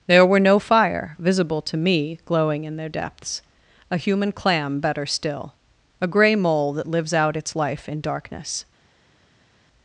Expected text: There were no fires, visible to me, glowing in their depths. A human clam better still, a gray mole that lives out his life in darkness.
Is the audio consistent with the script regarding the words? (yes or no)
no